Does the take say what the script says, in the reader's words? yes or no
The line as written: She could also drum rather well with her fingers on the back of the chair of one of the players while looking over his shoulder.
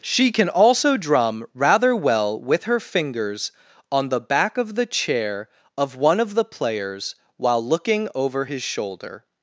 no